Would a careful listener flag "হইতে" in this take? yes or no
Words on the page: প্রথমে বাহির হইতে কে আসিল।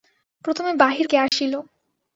yes